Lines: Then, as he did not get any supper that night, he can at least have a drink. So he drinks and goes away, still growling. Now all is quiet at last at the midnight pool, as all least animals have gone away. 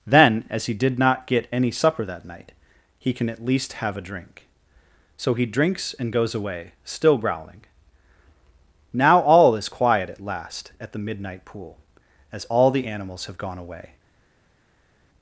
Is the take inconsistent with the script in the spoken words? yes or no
yes